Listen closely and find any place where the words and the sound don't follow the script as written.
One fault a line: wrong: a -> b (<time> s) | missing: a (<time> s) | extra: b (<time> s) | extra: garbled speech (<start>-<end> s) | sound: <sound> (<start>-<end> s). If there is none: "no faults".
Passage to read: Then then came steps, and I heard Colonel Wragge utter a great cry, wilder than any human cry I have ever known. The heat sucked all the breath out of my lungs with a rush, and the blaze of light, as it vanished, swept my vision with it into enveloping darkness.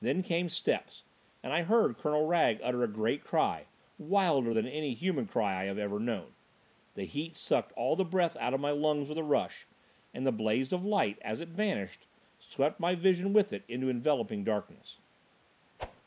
missing: then (0.2 s)
sound: whoosh (15.8-16.0 s)